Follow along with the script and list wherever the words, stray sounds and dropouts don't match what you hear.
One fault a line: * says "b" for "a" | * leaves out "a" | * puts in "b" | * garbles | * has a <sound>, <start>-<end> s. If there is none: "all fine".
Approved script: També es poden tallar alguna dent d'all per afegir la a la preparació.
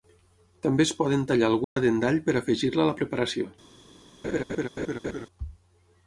* has a dropout, 1.6-1.8 s
* has a laugh, 4.2-5.3 s